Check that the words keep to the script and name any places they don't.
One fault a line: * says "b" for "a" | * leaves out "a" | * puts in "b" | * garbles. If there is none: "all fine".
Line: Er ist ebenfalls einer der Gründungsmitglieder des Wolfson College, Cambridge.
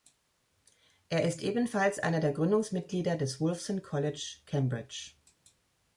all fine